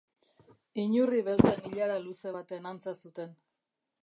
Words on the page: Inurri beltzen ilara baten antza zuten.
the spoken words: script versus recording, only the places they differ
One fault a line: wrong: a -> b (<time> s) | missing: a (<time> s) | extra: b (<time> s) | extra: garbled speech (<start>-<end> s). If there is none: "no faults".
extra: luze (2.1 s)